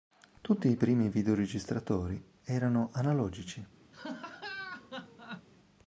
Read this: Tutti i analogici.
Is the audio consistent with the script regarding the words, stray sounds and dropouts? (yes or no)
no